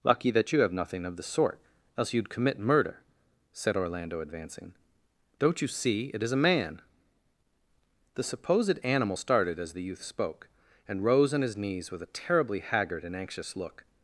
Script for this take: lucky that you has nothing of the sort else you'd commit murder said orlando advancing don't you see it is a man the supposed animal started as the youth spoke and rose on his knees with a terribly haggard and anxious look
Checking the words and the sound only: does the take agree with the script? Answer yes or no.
no